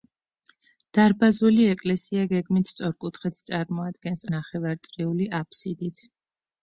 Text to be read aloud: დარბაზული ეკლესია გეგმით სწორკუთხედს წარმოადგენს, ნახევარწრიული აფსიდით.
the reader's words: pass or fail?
pass